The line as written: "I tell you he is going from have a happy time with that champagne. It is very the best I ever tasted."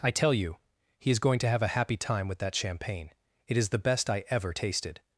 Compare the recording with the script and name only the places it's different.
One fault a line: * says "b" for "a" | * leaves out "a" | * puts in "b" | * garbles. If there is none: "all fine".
* says "to" for "from"
* leaves out "very"